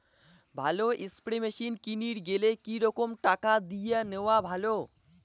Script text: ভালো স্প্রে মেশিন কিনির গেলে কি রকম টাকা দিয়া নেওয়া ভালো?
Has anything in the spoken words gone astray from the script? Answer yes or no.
no